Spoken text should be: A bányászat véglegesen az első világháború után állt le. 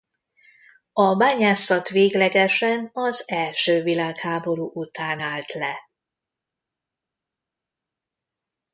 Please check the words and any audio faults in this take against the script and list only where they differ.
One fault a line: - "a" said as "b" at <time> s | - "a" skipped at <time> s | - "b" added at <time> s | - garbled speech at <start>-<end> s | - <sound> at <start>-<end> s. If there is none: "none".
none